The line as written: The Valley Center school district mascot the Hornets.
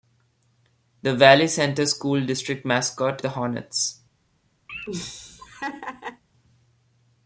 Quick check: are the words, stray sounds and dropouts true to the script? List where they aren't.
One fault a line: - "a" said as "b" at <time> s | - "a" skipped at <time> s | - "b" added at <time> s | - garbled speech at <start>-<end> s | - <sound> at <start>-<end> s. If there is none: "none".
- laugh at 4.7-6.2 s